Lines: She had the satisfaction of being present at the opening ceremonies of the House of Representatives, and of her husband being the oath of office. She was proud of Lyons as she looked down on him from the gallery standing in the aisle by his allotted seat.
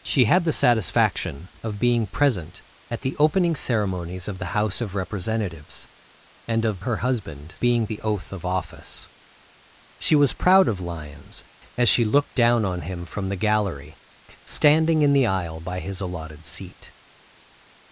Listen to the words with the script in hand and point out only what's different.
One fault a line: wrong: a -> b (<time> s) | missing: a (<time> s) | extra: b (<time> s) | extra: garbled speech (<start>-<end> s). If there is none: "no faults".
no faults